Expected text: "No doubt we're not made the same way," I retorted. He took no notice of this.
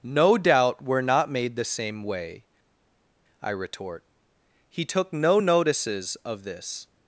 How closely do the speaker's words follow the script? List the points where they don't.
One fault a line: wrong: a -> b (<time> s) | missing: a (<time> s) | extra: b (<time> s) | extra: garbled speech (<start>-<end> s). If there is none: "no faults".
wrong: retorted -> retort (3.5 s)
wrong: notice -> notices (5.4 s)